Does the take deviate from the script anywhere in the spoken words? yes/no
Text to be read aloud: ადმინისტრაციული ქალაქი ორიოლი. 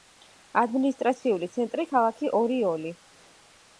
yes